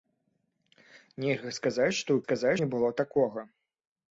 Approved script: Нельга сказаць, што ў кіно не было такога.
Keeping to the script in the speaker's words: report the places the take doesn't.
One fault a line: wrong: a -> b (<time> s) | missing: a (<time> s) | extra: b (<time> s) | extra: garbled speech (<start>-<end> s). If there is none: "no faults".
wrong: кіно -> сказаць (2.2 s)